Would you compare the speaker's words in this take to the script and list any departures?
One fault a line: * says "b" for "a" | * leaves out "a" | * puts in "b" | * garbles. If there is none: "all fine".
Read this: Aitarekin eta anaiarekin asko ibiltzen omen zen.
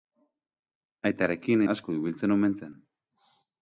* leaves out "eta anaiarekin"